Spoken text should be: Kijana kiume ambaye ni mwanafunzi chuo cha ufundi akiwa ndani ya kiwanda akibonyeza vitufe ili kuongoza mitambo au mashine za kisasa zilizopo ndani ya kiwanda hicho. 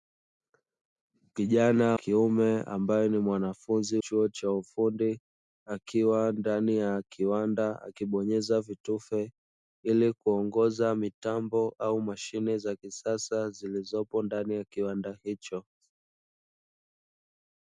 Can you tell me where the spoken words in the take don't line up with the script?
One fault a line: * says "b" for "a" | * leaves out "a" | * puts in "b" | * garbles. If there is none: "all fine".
all fine